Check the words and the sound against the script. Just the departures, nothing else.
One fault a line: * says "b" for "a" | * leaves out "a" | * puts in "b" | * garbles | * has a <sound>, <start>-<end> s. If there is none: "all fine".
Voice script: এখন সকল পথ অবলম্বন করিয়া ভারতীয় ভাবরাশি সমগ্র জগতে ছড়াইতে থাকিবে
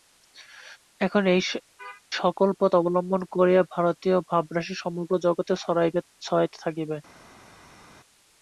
all fine